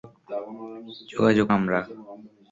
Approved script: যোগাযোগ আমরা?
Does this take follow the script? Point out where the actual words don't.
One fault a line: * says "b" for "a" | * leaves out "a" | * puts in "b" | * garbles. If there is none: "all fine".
all fine